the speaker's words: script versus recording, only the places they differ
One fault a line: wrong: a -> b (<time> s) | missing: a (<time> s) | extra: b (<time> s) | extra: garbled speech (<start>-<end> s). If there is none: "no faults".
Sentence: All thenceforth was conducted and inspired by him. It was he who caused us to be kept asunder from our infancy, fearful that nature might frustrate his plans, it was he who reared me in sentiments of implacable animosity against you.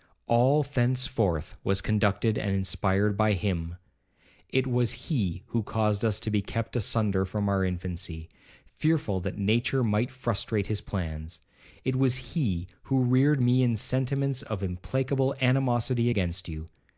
no faults